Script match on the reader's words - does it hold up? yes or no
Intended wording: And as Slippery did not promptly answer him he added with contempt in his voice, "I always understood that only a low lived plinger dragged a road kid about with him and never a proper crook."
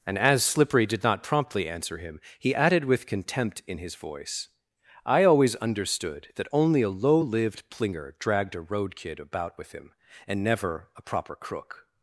yes